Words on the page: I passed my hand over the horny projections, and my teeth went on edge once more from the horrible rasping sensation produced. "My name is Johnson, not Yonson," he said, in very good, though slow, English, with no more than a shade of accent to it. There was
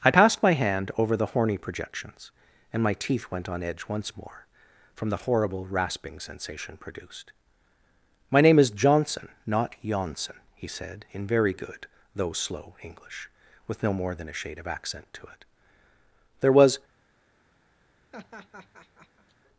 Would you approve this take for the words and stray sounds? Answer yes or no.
no